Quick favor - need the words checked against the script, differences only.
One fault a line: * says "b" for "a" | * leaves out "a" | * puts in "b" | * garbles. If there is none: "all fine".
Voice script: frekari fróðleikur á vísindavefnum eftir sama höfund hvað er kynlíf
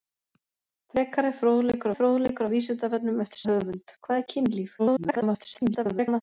* puts in "fróðleikur"
* leaves out "sama"
* garbles